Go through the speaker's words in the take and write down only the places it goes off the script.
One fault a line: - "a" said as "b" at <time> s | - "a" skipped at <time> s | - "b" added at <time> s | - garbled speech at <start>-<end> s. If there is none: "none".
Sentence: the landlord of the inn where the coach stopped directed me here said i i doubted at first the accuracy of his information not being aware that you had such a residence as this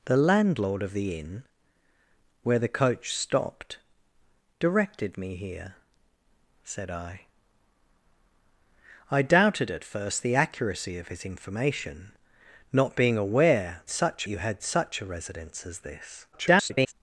- "that" said as "such" at 13.9 s
- garbled speech at 16.3-16.9 s